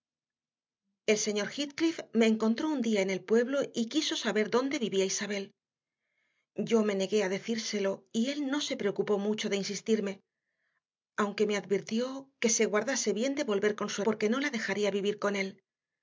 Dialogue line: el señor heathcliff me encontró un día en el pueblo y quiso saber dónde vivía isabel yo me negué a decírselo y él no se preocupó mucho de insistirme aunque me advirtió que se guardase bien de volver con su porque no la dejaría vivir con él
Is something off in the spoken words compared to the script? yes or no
no